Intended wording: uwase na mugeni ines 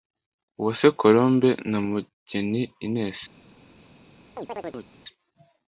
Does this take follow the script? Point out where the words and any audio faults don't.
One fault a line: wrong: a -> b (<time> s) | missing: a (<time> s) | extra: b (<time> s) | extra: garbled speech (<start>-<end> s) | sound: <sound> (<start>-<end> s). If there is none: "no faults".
extra: colombe (1.0 s)
sound: chirp (4.4-4.9 s)